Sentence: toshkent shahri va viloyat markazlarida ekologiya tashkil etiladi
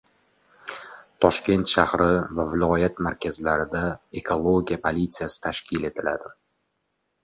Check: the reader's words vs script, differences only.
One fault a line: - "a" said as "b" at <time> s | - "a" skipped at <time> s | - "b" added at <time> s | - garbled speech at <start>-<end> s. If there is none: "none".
- "politsiyasi" added at 4.9 s